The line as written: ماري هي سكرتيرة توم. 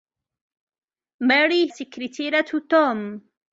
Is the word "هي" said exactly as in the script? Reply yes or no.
no